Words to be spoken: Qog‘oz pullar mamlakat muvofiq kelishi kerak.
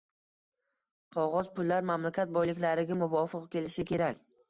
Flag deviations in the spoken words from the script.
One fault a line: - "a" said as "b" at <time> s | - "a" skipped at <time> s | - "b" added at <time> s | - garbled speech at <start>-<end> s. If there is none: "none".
- "boyliklariga" added at 2.4 s